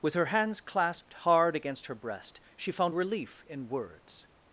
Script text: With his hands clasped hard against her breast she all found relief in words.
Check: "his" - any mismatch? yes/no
yes